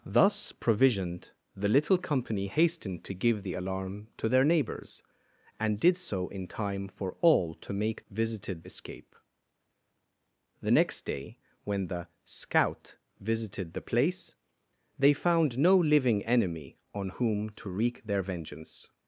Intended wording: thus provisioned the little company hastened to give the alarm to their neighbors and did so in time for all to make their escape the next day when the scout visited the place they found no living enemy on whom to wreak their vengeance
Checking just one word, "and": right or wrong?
right